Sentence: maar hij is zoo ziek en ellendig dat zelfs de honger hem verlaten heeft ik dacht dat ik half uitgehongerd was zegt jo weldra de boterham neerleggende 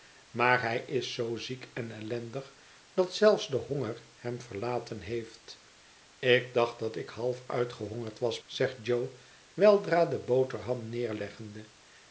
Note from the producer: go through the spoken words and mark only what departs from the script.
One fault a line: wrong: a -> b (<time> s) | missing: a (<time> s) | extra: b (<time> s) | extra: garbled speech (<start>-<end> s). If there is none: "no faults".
no faults